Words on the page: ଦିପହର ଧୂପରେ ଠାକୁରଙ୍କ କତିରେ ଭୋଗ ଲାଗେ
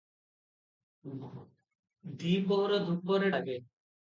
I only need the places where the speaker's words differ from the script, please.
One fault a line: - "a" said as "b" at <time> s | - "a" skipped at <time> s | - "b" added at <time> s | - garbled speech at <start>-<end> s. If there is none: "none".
- "ଠାକୁରଙ୍କ କତିରେ ଭୋଗ" skipped at 3.3 s